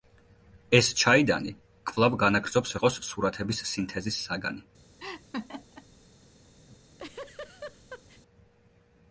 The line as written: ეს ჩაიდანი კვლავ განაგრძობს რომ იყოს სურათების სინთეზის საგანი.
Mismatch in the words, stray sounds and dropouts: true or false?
true